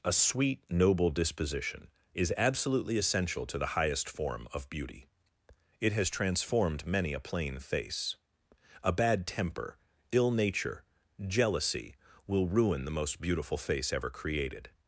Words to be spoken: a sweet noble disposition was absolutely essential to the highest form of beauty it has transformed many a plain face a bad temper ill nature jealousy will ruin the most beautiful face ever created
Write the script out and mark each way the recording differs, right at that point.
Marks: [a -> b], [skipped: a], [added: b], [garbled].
a sweet noble disposition [was -> is] absolutely essential to the highest form of beauty it has transformed many a plain face a bad temper ill nature jealousy will ruin the most beautiful face ever created